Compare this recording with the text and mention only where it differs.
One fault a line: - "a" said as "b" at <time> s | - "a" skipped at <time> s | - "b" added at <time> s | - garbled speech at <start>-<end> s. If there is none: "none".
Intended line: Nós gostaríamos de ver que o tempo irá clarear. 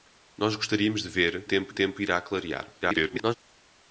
- "que" said as "tempo" at 1.4 s
- garbled speech at 2.8-3.4 s